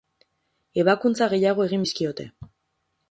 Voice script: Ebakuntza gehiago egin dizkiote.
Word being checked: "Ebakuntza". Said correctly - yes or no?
yes